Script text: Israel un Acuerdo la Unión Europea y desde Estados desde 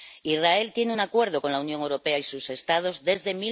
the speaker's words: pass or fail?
fail